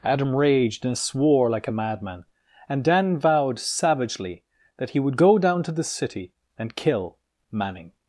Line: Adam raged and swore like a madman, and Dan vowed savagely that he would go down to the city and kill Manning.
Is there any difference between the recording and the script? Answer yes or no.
no